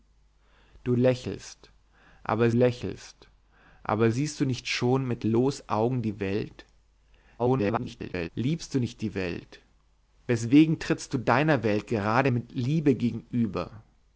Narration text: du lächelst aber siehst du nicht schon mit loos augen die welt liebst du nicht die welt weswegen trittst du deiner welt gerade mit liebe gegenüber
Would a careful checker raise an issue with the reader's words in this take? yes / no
yes